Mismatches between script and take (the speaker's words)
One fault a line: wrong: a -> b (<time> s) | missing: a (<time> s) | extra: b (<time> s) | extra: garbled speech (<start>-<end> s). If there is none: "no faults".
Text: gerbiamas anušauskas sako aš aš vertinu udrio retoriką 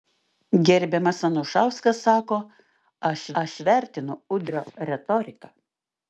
no faults